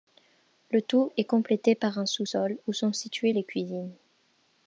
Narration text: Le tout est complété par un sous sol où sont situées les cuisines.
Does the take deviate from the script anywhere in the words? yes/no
no